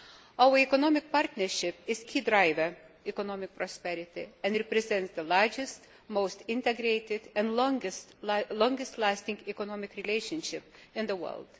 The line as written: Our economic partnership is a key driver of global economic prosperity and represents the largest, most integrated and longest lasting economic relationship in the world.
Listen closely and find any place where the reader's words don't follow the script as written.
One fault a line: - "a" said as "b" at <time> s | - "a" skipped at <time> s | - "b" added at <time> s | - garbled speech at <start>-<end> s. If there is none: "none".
- "a" skipped at 2.0 s
- "of global" skipped at 2.8 s